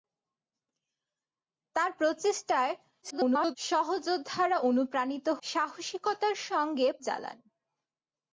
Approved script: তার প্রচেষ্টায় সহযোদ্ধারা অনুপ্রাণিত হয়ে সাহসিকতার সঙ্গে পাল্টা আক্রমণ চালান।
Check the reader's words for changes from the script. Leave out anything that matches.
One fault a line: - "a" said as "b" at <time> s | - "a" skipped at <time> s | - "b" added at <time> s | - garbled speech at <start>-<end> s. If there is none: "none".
- garbled speech at 3.0-3.6 s
- "হয়ে" skipped at 5.3 s
- "পাল্টা আক্রমণ" skipped at 6.9 s